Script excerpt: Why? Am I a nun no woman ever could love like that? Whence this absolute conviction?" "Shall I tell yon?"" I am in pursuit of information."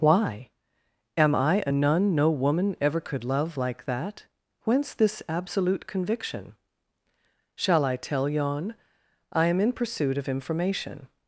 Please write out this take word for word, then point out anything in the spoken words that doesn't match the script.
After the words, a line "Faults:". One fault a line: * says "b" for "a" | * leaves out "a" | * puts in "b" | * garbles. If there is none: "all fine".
Why? Am I a nun no woman ever could love like that? Whence this absolute conviction?" "Shall I tell yon?"" I am in pursuit of information."
Faults:
all fine